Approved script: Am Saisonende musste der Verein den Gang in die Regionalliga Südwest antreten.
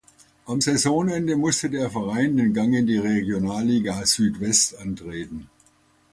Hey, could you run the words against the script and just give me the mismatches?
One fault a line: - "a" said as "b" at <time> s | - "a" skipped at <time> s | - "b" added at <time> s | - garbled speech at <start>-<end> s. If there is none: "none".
none